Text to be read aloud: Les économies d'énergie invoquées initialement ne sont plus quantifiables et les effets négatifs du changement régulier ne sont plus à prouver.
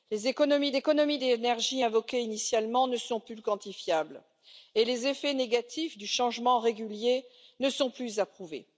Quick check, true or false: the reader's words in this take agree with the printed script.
false